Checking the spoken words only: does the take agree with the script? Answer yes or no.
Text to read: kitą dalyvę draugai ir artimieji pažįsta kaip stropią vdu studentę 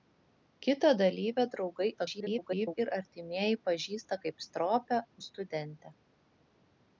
no